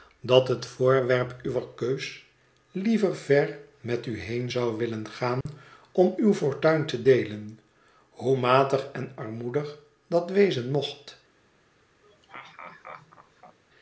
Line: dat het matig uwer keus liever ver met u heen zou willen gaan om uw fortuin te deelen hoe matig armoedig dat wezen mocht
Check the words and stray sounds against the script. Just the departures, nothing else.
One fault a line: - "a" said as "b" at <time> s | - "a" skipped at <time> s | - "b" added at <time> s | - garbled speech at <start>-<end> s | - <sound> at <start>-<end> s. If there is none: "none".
- "matig" said as "voorwerp" at 0.6 s
- dropout at 5.4-5.5 s
- "en" added at 8.9 s
- laugh at 12.0-13.6 s